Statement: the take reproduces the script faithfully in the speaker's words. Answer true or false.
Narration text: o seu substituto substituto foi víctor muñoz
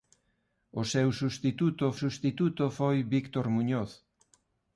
true